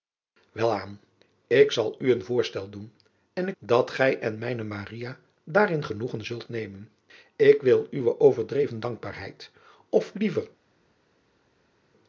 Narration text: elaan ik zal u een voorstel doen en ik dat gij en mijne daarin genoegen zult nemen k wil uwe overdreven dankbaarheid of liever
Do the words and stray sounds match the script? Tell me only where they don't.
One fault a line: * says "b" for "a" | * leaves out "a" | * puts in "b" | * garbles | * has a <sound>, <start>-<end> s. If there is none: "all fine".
all fine